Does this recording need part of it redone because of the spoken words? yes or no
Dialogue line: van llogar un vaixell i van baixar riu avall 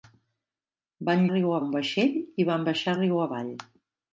yes